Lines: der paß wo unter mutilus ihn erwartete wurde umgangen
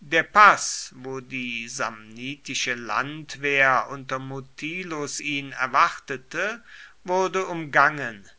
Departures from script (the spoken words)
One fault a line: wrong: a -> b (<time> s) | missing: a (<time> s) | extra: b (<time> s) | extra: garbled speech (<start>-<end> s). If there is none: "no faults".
extra: die samnitische landwehr (1.2 s)